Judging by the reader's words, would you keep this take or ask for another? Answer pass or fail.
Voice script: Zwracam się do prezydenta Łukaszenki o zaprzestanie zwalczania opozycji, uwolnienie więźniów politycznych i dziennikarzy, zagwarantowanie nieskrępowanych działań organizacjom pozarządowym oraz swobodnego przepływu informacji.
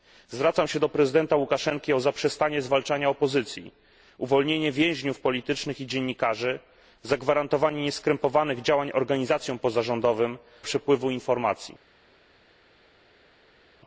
fail